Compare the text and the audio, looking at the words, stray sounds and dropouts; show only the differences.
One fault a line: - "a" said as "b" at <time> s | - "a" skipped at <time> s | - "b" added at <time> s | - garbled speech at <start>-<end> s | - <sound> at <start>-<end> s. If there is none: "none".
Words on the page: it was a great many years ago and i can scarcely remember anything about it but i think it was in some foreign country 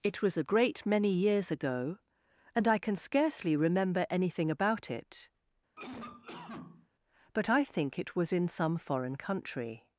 - cough at 5.8-6.9 s